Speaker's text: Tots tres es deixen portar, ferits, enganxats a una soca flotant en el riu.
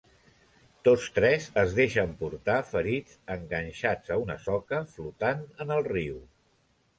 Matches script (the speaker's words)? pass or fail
pass